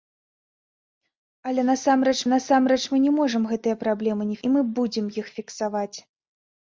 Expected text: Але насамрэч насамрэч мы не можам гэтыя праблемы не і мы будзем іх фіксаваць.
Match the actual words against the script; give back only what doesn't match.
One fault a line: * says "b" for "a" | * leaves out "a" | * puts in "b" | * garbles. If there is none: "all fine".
all fine